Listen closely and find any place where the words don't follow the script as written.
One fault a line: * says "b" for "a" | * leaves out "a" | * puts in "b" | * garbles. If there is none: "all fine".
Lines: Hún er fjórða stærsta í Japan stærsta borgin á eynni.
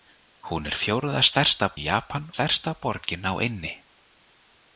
all fine